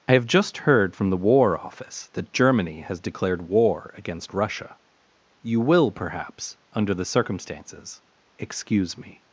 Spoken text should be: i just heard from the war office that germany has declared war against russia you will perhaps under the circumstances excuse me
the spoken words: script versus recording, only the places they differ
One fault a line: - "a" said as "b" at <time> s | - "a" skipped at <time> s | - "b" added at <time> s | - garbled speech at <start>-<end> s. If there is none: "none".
- "have" added at 0.1 s